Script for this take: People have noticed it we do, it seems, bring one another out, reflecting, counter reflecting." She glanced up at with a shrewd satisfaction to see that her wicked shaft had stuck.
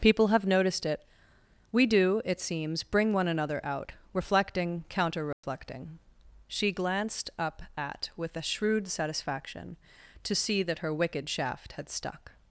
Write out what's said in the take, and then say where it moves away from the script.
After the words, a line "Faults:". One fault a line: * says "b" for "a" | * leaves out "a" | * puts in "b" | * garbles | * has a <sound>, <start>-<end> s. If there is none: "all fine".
People have noticed it we do, it seems, bring one another out, reflecting, counter reflecting." She glanced up at with a shrewd satisfaction to see that her wicked shaft had stuck.
Faults:
* has a dropout, 5.3-5.4 s